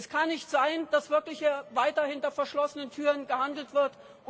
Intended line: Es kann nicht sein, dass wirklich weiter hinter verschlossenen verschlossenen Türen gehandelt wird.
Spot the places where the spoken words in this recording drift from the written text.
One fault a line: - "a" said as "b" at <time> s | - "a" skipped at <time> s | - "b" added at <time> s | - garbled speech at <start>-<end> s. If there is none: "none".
- "verschlossenen" skipped at 2.9 s